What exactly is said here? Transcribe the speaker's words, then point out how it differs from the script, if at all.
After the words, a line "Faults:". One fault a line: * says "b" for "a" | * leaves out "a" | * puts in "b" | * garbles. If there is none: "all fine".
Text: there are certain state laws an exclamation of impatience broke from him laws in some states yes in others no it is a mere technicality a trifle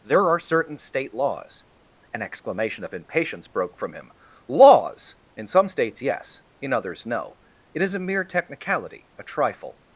there are certain state laws an exclamation of impatience broke from him laws in some states yes in others no it is a mere technicality a trifle
Faults:
all fine